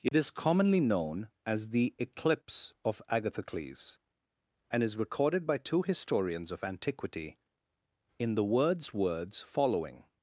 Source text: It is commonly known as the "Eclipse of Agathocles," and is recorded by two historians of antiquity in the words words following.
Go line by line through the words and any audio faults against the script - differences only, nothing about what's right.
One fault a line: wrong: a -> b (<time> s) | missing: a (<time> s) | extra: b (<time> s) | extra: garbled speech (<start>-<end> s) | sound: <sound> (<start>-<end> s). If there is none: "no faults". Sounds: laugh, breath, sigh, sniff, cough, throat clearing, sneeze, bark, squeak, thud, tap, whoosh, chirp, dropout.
sound: dropout (0.1-0.1 s)